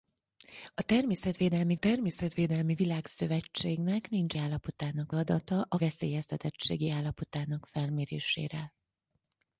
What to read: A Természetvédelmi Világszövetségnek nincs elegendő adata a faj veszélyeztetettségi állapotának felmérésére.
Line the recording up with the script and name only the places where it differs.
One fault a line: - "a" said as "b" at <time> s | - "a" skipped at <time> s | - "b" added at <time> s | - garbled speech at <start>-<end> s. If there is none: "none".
- "Természetvédelmi" added at 1.7 s
- "elegendő" said as "állapotának" at 4.4 s
- "faj" skipped at 5.8 s